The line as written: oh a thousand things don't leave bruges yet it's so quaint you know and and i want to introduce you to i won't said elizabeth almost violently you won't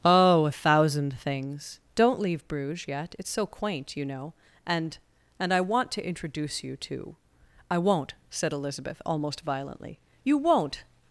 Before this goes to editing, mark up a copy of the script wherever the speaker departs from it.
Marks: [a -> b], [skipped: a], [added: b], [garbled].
oh a thousand things don't leave bruges yet it's so quaint you know and and i want to introduce you to i won't said elizabeth almost violently you won't